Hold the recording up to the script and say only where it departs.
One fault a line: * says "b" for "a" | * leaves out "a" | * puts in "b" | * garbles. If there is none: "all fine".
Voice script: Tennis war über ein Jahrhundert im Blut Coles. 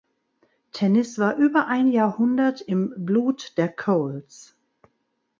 * puts in "der"